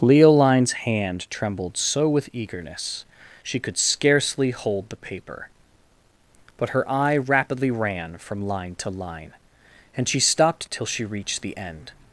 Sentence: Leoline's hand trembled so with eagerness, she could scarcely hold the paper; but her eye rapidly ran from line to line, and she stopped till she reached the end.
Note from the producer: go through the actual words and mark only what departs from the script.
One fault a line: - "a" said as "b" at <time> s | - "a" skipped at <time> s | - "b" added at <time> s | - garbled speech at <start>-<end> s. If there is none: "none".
none